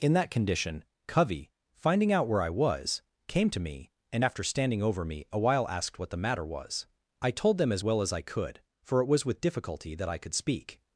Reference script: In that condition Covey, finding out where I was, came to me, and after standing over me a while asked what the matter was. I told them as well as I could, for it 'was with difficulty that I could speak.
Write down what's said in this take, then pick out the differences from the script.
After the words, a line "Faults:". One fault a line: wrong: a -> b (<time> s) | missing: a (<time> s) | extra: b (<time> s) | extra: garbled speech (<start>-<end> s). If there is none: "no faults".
In that condition Covey, finding out where I was, came to me, and after standing over me a while asked what the matter was. I told them as well as I could, for it 'was with difficulty that I could speak.
Faults:
no faults